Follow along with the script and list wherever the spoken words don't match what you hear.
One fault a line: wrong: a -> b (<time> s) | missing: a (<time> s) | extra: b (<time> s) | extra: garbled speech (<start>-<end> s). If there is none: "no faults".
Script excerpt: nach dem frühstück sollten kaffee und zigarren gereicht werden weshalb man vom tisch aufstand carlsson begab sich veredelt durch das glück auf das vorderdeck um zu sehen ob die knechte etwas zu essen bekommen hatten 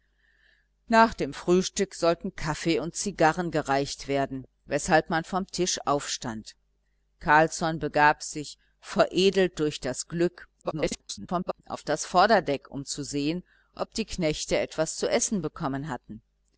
extra: garbled speech (10.6-11.6 s)